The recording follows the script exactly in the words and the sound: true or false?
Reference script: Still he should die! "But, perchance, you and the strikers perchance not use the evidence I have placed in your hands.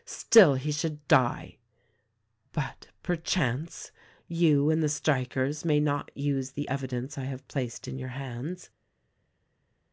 false